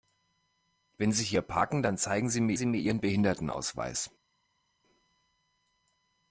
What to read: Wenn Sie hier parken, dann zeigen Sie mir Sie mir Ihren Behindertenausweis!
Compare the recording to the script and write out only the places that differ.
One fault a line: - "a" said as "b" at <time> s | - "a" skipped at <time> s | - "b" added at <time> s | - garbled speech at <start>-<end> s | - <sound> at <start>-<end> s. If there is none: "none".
none